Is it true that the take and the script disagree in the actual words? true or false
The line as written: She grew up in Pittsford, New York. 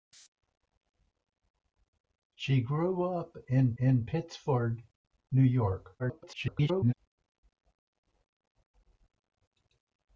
true